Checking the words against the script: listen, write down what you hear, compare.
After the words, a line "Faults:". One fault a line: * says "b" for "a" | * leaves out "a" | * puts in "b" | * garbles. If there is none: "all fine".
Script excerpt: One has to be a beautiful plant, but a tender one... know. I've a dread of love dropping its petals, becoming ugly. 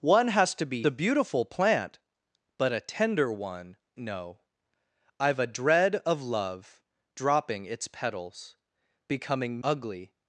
One has to be a beautiful plant, but a tender one... know. I've a dread of love dropping its petals, becoming ugly.
Faults:
all fine